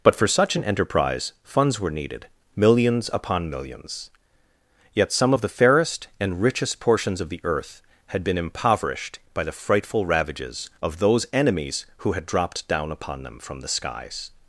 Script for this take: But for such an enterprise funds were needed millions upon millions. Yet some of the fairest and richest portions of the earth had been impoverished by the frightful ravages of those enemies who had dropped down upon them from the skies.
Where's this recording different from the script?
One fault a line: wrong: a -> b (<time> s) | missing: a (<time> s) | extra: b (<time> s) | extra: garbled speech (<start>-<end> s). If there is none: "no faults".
no faults